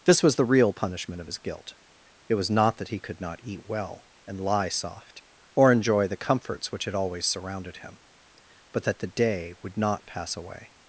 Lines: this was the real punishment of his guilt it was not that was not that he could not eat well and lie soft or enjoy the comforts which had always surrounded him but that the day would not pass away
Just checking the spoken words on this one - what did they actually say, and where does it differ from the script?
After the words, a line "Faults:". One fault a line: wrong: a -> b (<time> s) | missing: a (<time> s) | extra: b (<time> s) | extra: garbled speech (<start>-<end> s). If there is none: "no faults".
this was the real punishment of his guilt it was not that he could not eat well and lie soft or enjoy the comforts which had always surrounded him but that the day would not pass away
Faults:
missing: was not that (2.9 s)